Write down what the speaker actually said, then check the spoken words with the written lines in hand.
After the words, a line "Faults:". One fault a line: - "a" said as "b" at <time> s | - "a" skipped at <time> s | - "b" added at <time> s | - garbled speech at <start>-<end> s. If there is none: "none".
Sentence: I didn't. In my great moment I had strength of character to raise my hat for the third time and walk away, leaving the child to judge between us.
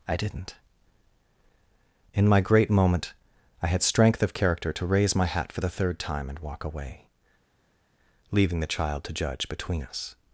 I didn't. In my great moment I had strength of character to raise my hat for the third time and walk away, leaving the child to judge between us.
Faults:
none